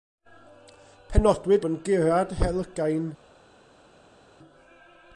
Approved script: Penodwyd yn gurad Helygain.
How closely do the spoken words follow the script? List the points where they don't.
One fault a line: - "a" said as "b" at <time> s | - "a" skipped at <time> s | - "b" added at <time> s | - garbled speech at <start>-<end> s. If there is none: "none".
none